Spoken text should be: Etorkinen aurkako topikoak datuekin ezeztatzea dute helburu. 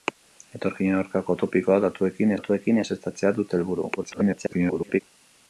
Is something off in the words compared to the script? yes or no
yes